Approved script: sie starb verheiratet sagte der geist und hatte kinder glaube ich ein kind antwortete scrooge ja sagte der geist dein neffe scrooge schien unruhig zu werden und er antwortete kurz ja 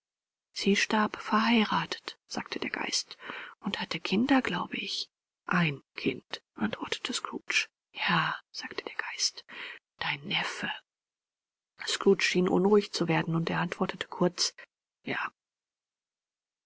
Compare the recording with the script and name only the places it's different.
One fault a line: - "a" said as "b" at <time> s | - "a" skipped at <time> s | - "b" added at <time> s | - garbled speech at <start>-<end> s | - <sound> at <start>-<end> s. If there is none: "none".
none